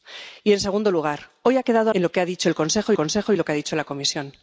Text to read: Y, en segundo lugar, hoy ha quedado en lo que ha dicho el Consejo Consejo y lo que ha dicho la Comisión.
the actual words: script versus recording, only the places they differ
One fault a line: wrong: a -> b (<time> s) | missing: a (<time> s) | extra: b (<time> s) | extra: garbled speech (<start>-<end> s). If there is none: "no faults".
no faults